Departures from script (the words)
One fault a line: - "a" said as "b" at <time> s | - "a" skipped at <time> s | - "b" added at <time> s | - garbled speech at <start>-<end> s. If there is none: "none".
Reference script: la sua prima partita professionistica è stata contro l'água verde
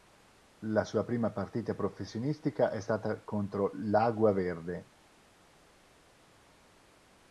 none